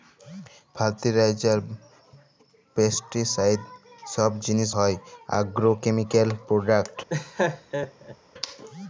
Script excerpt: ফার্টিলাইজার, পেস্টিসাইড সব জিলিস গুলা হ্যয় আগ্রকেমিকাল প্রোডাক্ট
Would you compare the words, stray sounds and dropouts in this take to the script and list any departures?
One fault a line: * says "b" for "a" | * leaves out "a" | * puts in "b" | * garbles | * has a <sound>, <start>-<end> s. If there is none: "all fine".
* leaves out "গুলা"
* has a laugh, 7.1-8.2 s